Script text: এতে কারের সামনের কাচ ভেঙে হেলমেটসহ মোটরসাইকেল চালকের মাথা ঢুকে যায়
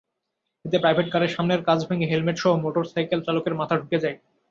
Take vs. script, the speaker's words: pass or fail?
fail